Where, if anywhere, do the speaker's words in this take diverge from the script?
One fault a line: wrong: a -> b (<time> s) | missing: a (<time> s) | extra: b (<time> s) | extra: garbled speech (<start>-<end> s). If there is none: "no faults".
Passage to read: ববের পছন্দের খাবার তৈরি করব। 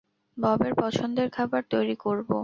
no faults